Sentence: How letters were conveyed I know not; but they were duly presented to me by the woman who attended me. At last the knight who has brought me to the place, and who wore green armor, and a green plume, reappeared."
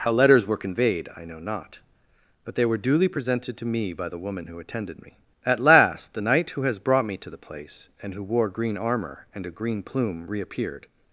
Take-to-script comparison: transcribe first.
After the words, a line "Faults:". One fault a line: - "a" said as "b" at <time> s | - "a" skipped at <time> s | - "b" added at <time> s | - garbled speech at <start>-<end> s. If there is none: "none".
How letters were conveyed I know not; but they were duly presented to me by the woman who attended me. At last the knight who has brought me to the place, and who wore green armor, and a green plume, reappeared."
Faults:
none